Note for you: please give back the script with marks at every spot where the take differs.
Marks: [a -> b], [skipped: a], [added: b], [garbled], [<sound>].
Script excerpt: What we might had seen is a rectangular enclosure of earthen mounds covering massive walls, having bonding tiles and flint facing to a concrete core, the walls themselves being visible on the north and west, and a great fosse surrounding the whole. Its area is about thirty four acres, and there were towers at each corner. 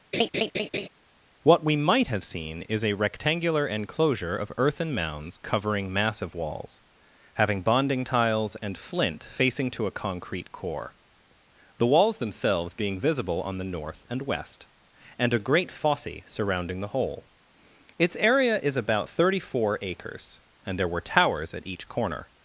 [laugh] What we might [had -> have] seen is a rectangular enclosure of earthen mounds covering massive walls, having bonding tiles and flint facing to a concrete core, the walls themselves being visible on the north and west, and a great fosse surrounding the whole. Its area is about thirty four acres, and there were towers at each corner.